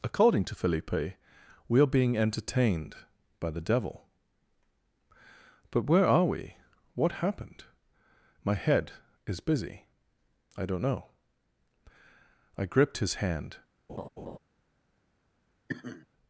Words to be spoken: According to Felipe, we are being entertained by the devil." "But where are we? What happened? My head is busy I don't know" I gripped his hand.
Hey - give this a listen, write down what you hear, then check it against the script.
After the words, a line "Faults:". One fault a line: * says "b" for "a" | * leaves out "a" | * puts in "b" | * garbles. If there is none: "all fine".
According to Felipe, we are being entertained by the devil." "But where are we? What happened? My head is busy I don't know" I gripped his hand.
Faults:
all fine